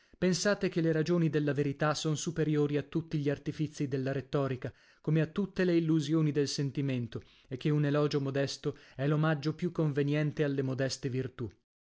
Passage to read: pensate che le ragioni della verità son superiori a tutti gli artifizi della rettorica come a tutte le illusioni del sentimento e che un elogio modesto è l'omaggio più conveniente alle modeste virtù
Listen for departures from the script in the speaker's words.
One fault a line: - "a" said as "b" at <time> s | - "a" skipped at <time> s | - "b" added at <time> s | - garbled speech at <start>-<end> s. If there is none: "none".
none